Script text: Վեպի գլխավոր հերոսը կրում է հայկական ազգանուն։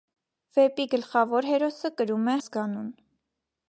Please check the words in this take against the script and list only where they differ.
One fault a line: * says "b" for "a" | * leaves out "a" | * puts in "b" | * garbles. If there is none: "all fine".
* leaves out "հայկական"